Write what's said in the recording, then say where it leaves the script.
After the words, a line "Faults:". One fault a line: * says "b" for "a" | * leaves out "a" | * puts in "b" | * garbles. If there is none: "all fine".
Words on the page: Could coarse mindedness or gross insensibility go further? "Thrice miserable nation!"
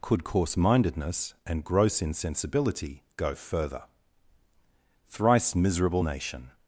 Could coarse mindedness and gross insensibility go further? "Thrice miserable nation!"
Faults:
* says "and" for "or"